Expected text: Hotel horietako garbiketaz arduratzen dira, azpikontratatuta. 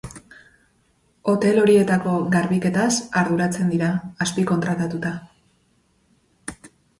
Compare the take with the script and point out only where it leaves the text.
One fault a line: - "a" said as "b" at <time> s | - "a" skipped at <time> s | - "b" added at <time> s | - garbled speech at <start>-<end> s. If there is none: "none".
none